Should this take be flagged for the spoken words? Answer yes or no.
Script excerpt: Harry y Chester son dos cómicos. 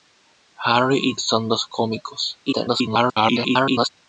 yes